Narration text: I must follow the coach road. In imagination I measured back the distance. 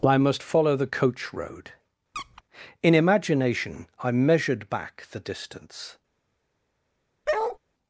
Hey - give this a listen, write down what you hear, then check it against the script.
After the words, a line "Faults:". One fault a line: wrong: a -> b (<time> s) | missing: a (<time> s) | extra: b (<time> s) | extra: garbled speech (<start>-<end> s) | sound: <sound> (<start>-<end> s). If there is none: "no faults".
I must follow the coach road. In imagination I measured back the distance.
Faults:
sound: squeak (2.1-2.4 s)
sound: bark (7.3-7.6 s)